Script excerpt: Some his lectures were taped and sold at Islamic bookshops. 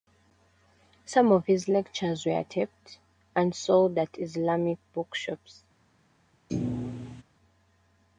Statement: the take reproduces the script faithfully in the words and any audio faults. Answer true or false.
false